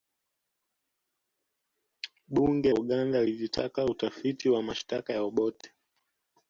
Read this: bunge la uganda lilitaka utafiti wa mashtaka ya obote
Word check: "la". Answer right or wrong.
wrong